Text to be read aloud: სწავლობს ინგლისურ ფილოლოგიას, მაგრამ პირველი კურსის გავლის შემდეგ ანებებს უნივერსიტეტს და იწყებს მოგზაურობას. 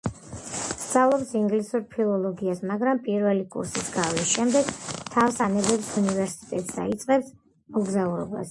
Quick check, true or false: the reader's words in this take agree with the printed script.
false